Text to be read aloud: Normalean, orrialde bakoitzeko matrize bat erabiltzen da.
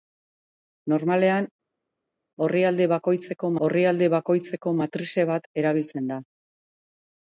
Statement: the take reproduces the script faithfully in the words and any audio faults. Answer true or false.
false